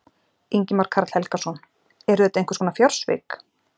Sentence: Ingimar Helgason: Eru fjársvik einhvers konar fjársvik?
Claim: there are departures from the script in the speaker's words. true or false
true